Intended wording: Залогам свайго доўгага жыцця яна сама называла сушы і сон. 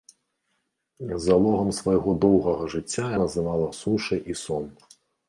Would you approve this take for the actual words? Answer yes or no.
no